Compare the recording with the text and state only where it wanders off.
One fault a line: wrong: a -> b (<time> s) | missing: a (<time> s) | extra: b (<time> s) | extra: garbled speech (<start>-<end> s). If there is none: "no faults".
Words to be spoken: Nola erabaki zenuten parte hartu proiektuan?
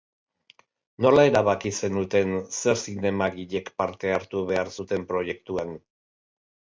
extra: zer zinemagilek (2.6 s)
extra: behar zuten (4.5 s)